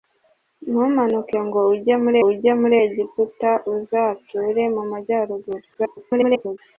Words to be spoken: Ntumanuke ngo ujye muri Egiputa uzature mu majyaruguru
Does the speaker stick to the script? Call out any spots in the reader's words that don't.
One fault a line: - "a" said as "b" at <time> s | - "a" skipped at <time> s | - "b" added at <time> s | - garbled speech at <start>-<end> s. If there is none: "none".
- "ujye muri" added at 2.3 s
- garbled speech at 5.7-6.6 s